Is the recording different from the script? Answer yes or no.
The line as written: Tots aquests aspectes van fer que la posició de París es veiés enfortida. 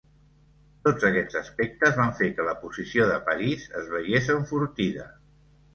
no